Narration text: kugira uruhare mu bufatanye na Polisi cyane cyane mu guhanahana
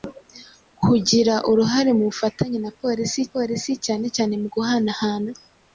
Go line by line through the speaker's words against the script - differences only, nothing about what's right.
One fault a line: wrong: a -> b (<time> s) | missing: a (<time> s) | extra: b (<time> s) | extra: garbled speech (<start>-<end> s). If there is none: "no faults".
extra: Polisi (3.3 s)